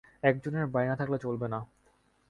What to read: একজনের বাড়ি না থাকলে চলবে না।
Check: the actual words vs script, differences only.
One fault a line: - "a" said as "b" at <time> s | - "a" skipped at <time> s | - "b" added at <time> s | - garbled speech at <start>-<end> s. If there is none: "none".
none